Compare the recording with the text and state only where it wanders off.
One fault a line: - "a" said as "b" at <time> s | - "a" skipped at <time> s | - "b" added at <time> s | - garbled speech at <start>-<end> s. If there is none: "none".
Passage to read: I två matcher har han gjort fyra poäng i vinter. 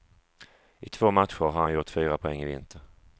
none